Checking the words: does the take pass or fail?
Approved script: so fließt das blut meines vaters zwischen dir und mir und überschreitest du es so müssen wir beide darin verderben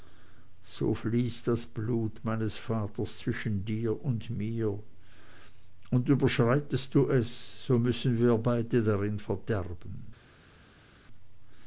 pass